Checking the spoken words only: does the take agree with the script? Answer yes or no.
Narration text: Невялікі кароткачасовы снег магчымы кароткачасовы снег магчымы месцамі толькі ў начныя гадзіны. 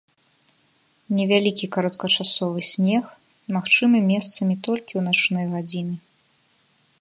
no